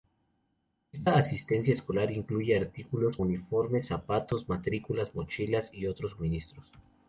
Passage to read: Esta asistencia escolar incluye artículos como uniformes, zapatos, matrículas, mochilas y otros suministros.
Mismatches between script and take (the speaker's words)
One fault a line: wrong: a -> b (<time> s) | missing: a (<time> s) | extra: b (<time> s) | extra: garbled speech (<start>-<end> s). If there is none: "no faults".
missing: como (3.2 s)